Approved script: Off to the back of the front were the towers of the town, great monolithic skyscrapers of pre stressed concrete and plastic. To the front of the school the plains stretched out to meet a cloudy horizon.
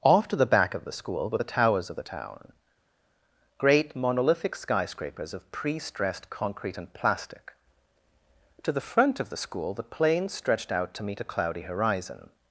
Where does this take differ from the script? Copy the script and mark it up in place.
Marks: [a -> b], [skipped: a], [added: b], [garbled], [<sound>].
Off to the back of the [front -> school] were the towers of the town, great monolithic skyscrapers of pre stressed concrete and plastic. To the front of the school the plains stretched out to meet a cloudy horizon.